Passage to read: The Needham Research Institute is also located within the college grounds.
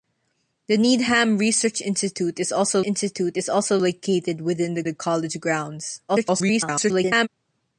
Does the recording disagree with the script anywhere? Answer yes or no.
yes